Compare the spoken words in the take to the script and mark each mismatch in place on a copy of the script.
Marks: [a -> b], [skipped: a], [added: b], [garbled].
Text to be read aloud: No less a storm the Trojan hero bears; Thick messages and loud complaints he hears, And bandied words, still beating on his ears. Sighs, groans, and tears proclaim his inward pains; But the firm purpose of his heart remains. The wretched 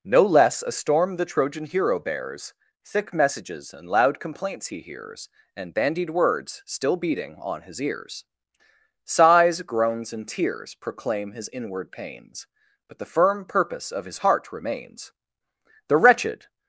No less a storm the Trojan hero bears; Thick messages and loud complaints he hears, And bandied words, still beating on his ears. Sighs, groans, and tears proclaim his inward pains; But the firm purpose of his heart remains. The wretched